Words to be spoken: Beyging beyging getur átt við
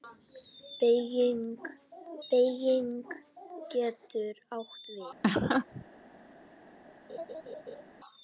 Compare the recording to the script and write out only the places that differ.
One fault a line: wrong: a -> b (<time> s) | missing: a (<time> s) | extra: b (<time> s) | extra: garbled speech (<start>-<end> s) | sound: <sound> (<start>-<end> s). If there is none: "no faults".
sound: laugh (5.2-5.8 s)
sound: laugh (7.1-7.8 s)